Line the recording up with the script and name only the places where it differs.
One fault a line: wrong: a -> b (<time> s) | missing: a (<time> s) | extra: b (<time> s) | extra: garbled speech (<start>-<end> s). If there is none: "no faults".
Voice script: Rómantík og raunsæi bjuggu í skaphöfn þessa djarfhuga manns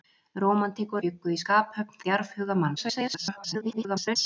missing: raunsæi (1.0 s)
missing: þessa (2.0 s)
extra: garbled speech (2.8-4.2 s)